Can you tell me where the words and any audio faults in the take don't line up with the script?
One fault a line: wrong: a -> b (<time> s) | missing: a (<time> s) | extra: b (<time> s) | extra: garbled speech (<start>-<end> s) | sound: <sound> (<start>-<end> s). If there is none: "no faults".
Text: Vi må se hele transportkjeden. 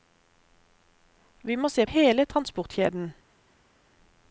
no faults